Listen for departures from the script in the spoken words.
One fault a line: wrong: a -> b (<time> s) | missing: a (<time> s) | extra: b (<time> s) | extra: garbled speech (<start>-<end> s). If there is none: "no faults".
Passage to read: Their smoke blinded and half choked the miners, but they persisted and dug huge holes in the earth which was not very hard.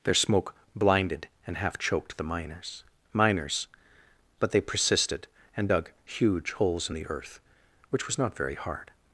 extra: miners (3.1 s)